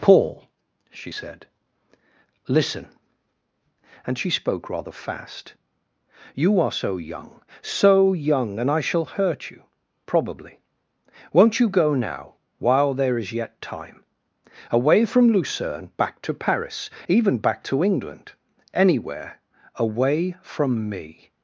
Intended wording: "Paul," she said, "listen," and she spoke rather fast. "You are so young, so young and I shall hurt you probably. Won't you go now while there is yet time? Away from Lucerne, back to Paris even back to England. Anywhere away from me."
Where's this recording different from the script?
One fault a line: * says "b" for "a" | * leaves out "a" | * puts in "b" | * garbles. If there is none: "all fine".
all fine